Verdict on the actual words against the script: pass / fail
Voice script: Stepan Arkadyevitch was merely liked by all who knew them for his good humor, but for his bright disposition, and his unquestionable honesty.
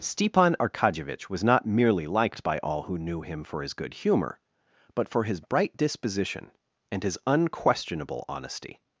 fail